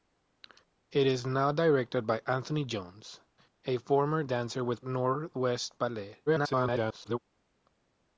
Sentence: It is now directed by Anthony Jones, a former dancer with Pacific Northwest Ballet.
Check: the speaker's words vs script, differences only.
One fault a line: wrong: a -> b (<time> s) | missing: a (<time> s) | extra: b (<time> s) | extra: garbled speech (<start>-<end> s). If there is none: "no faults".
missing: Pacific (4.8 s)
extra: garbled speech (6.3-7.2 s)